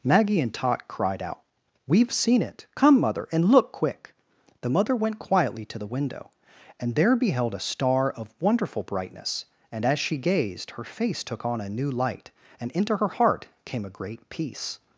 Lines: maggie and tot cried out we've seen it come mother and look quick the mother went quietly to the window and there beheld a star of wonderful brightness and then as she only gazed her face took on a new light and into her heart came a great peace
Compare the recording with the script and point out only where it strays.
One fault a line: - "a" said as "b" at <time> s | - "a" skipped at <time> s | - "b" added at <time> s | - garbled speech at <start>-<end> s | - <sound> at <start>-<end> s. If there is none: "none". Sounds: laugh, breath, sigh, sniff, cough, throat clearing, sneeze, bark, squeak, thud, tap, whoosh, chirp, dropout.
- "then" skipped at 9.8 s
- "only" skipped at 10.2 s